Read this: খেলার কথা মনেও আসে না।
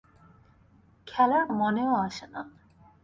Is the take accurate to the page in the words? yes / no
no